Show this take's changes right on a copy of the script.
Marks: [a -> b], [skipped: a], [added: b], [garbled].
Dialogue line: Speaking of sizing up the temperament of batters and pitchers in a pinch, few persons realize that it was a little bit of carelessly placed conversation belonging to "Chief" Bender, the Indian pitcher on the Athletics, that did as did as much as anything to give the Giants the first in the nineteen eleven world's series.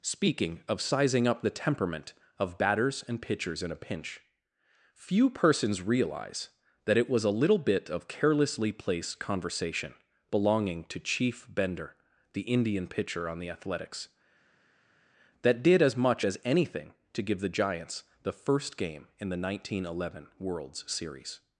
Speaking of sizing up the temperament of batters and pitchers in a pinch, few persons realize that it was a little bit of carelessly placed conversation belonging to "Chief" Bender, the Indian pitcher on the Athletics, that did as [skipped: did as] much as anything to give the Giants the first [added: game] in the nineteen eleven world's series.